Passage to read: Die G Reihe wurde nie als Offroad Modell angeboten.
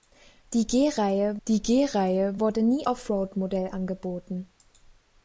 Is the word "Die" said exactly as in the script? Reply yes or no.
yes